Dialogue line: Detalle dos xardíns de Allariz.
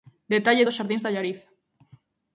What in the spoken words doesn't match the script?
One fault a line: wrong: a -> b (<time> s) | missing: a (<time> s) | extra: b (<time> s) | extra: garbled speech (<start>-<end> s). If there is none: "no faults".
no faults